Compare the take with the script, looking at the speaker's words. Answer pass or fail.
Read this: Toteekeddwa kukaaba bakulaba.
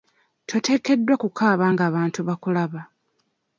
fail